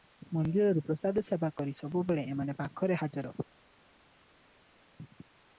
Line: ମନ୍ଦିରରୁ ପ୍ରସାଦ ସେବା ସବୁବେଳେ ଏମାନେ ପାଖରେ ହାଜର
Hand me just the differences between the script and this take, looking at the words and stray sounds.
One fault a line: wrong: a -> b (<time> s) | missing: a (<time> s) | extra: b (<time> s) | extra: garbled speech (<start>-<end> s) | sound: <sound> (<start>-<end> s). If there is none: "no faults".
extra: କରି (1.6 s)